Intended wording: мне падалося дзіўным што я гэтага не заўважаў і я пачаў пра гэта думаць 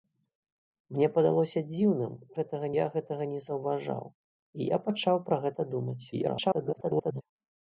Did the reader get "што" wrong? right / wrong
wrong